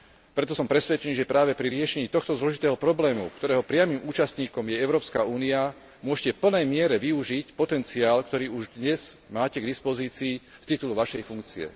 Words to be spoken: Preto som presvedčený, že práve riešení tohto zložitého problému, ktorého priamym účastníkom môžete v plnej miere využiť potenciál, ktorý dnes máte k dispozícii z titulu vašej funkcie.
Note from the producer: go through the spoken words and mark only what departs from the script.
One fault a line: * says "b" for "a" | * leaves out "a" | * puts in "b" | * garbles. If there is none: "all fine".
* puts in "pri"
* puts in "je Európska únia"
* puts in "už"